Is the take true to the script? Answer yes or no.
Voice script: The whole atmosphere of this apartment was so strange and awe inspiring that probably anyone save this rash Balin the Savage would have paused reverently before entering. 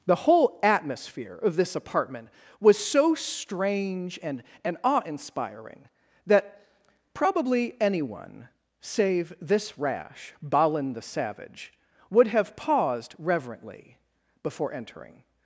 no